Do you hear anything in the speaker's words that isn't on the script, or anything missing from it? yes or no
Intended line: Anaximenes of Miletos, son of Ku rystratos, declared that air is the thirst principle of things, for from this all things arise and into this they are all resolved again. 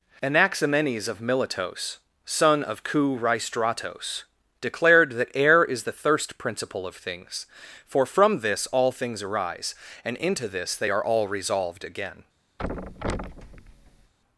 no